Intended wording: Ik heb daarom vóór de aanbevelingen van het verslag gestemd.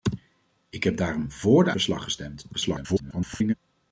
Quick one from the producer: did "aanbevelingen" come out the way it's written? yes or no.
no